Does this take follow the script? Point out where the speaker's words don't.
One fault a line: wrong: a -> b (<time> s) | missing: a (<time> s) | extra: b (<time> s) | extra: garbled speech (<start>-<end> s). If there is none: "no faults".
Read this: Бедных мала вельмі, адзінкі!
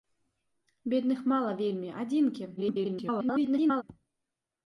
extra: garbled speech (2.6-3.8 s)